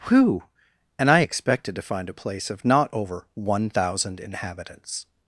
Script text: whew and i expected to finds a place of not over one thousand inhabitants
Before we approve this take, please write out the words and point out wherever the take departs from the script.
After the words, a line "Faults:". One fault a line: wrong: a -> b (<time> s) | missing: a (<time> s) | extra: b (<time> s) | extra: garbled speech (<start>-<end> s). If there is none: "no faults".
whew and i expected to find a place of not over one thousand inhabitants
Faults:
wrong: finds -> find (1.8 s)